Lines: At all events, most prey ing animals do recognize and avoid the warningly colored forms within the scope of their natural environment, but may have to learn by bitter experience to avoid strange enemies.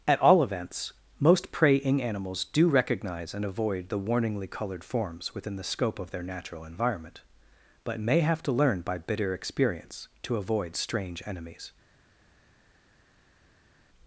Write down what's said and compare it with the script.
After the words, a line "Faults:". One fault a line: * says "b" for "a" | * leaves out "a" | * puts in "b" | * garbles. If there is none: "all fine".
At all events, most prey ing animals do recognize and avoid the warningly colored forms within the scope of their natural environment, but may have to learn by bitter experience to avoid strange enemies.
Faults:
all fine